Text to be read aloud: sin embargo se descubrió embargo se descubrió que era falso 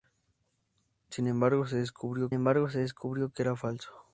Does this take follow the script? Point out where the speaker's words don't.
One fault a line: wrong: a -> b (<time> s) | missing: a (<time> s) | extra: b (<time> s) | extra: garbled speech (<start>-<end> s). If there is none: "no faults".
no faults